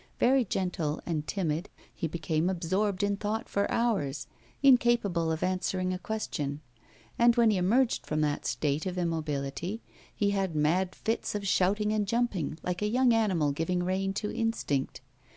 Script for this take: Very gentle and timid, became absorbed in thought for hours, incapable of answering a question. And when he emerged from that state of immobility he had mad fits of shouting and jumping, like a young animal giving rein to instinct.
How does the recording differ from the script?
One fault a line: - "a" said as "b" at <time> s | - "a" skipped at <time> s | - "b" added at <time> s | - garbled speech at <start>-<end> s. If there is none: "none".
- "he" added at 1.9 s